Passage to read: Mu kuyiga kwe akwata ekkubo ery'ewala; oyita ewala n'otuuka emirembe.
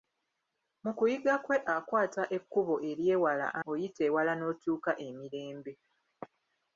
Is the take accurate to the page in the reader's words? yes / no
yes